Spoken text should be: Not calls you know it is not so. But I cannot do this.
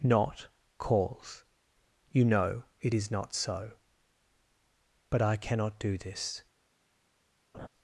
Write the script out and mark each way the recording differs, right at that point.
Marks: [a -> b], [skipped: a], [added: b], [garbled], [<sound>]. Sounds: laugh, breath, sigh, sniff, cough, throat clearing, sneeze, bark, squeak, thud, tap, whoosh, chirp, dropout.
Not calls you know it is not so. But I cannot do this. [laugh]